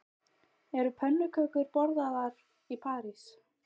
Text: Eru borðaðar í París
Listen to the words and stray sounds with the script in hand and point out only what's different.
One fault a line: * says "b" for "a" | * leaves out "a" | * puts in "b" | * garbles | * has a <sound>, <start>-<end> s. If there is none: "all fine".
* puts in "pönnukökur"